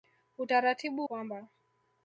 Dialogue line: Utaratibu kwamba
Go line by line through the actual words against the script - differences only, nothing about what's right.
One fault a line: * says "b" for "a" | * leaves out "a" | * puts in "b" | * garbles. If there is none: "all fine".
all fine